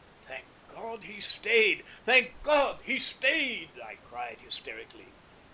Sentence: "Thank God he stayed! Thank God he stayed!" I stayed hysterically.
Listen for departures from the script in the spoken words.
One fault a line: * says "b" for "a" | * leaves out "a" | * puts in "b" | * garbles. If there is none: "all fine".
* says "cried" for "stayed"